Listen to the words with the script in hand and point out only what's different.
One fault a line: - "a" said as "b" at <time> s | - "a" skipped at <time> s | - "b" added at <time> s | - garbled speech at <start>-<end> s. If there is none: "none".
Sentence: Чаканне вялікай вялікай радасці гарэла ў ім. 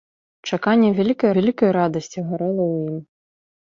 none